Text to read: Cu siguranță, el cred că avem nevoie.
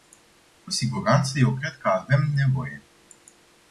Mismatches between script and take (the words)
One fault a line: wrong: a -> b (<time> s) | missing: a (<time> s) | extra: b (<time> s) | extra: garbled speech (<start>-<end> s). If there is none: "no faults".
wrong: el -> eu (1.4 s)